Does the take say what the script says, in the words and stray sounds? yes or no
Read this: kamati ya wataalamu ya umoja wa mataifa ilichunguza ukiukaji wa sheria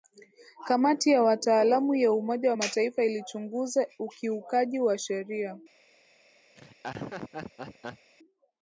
no